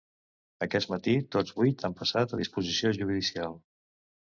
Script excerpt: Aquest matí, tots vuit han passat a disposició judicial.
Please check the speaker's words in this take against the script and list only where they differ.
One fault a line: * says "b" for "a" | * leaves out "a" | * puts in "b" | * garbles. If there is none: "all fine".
all fine